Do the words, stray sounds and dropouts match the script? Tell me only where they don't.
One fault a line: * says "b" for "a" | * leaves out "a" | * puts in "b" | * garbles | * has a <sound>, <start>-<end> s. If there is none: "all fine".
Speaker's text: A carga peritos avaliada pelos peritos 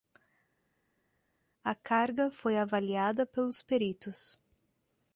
* says "foi" for "peritos"